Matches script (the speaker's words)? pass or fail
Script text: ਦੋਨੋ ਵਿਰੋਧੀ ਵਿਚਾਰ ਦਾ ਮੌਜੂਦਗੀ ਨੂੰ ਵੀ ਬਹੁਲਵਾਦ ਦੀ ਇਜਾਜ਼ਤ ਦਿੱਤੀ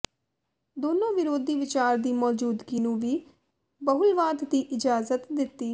fail